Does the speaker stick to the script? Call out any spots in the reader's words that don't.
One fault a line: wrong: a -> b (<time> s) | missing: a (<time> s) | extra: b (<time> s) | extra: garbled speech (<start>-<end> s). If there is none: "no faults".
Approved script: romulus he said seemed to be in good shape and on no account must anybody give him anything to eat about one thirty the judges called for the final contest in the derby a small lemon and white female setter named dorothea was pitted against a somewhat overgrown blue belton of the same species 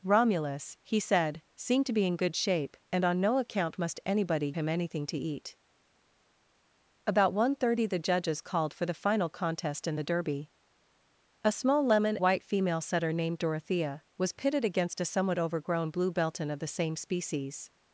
missing: give (4.5 s)
missing: and (12.2 s)